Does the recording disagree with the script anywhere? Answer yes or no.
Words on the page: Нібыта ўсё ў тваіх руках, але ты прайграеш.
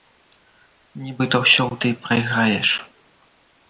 yes